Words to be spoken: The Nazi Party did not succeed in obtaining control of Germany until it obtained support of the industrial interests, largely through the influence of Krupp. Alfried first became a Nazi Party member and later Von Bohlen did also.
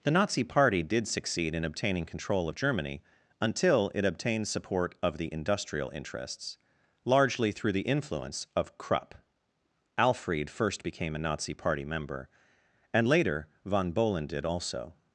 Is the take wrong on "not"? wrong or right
wrong